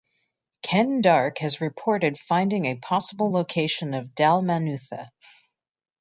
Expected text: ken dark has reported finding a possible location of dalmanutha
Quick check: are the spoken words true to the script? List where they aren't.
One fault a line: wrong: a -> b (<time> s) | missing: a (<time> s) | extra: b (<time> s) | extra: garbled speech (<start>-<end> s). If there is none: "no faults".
no faults